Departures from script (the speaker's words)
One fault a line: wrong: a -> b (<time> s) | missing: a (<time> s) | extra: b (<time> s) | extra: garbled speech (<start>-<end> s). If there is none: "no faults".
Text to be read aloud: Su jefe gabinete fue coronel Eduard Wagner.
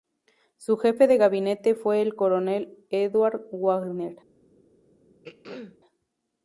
extra: de (1.1 s)
extra: el (2.0 s)